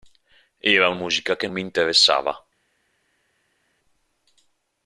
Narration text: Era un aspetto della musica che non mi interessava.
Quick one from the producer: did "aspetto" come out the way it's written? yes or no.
no